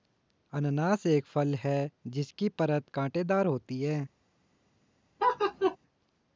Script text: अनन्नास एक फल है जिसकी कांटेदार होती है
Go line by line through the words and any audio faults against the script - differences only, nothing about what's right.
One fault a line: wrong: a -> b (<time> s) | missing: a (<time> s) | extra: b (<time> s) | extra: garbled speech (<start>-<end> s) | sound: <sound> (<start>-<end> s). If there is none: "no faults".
extra: परत (2.5 s)
sound: laugh (5.2-5.8 s)